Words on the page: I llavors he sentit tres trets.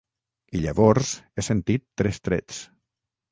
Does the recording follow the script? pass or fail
pass